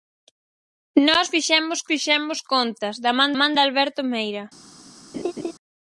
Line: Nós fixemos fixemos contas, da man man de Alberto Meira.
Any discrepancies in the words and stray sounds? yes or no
yes